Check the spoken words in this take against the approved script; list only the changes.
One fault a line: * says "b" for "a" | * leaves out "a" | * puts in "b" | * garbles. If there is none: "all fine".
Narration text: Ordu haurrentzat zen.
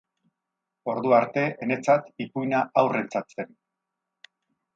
* puts in "arte enetzat ipuina"